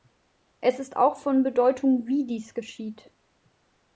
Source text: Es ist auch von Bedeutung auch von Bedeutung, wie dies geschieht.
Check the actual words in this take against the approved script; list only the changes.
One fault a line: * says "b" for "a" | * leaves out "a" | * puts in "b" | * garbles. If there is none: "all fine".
* leaves out "auch von Bedeutung"